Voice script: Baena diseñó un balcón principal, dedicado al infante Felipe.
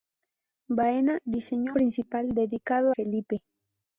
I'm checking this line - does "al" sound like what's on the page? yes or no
no